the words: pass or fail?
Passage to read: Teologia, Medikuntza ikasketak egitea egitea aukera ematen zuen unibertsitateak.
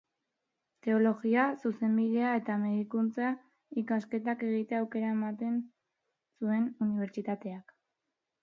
fail